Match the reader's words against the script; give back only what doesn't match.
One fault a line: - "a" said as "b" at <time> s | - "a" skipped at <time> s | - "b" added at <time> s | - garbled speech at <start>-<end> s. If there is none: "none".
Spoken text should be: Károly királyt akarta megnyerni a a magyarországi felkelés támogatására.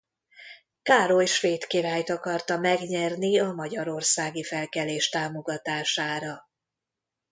- "svéd" added at 1.2 s
- "a" skipped at 3.5 s